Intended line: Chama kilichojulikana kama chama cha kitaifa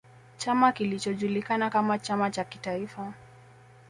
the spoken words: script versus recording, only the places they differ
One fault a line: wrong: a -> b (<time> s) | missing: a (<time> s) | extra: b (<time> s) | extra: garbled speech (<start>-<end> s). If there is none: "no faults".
no faults